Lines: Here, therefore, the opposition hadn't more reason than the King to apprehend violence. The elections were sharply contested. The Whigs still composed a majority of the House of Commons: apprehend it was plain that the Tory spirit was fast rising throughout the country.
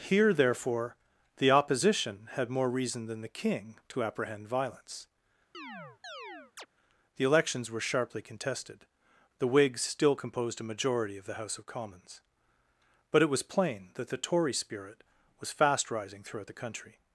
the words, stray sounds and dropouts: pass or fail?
fail